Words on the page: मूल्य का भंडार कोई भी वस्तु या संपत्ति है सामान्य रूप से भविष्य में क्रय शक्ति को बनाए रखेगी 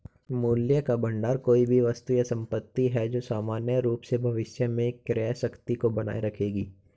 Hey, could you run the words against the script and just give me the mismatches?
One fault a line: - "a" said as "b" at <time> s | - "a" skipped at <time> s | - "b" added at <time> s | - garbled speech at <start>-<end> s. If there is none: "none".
- "जो" added at 3.1 s